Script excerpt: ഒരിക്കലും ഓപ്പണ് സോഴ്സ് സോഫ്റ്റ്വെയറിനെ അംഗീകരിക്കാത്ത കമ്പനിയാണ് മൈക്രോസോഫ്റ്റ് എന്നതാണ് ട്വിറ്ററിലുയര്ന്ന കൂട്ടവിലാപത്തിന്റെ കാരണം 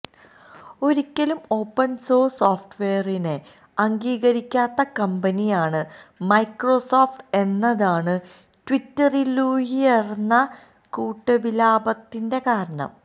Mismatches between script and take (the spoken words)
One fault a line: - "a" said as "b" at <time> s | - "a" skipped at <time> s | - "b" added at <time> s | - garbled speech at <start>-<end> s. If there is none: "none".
none